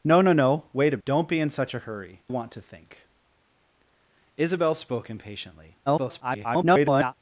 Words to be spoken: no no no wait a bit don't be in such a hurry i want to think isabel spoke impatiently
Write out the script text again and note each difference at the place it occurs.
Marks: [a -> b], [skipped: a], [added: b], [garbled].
no no no wait a [skipped: bit] don't be in such a hurry [skipped: i] want to think isabel spoke impatiently [garbled]